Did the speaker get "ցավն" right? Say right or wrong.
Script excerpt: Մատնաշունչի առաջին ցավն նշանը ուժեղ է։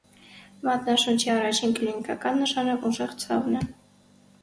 wrong